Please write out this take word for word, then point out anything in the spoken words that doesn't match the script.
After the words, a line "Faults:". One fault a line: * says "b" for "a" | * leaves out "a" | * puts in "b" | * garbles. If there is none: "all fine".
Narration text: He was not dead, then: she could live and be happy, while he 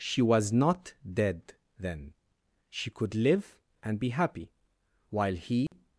She was not dead, then: she could live and be happy, while he
Faults:
* says "She" for "He"